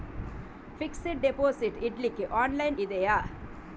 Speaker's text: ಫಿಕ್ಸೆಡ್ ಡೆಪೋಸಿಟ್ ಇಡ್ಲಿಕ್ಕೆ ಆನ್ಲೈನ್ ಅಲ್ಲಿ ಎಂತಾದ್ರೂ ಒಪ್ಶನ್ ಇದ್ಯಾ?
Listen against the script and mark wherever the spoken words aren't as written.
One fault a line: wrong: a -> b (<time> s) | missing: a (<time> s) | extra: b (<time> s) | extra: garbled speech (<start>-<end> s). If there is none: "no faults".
missing: ಅಲ್ಲಿ ಎಂತಾದ್ರೂ ಒಪ್ಶನ್ (2.8 s)